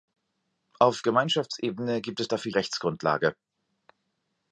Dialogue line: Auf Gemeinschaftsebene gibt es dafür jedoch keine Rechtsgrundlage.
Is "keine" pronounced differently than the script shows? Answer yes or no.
yes